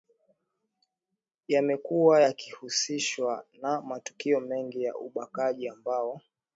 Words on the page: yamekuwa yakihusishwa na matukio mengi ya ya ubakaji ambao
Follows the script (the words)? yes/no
no